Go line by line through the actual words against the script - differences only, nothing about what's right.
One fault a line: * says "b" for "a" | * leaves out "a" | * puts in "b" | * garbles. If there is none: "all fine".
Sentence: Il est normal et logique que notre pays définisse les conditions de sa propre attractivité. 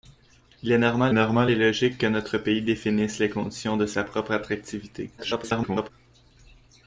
* puts in "normal"
* garbles